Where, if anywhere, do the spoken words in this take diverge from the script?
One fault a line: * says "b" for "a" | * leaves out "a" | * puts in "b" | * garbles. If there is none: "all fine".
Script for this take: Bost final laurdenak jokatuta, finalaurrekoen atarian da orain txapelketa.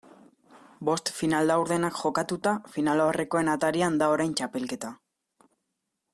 all fine